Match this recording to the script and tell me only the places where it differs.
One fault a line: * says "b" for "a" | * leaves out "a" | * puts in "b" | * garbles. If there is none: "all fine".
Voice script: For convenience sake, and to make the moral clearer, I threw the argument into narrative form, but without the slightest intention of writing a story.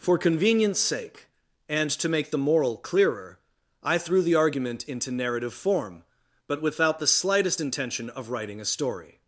all fine